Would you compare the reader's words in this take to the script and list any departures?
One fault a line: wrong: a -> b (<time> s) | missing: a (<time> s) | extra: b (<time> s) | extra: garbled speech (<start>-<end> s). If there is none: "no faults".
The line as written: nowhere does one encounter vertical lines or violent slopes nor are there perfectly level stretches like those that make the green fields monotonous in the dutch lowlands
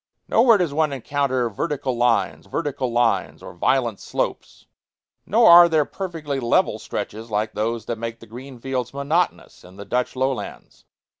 extra: vertical lines (2.4 s)